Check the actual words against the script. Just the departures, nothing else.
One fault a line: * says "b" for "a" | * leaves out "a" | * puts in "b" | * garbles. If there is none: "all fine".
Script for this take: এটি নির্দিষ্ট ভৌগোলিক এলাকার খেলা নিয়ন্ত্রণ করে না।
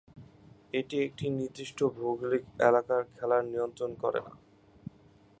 * puts in "একটি"